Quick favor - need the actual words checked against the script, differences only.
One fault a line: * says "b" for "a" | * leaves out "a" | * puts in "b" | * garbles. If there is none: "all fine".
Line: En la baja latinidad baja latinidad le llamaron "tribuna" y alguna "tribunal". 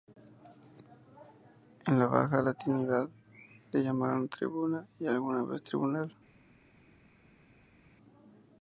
* leaves out "baja latinidad"
* puts in "vez"